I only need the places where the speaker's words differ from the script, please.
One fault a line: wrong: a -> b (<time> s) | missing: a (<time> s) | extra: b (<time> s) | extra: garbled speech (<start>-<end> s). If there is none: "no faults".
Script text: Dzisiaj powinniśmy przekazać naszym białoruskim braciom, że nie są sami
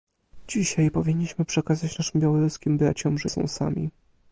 missing: nie (3.3 s)